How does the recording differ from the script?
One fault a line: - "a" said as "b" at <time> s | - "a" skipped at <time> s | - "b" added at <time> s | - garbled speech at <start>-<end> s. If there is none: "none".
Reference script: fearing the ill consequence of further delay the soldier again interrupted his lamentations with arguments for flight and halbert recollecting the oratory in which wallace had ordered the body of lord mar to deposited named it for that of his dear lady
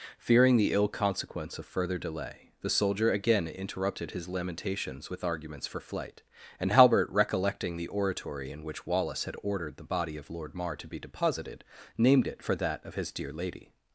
- "be" added at 10.9 s